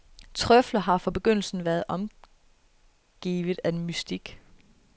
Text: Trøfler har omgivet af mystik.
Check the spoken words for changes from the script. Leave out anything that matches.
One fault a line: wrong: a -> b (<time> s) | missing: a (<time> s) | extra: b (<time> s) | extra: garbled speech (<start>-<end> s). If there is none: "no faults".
extra: fra begyndelsen været (1.0 s)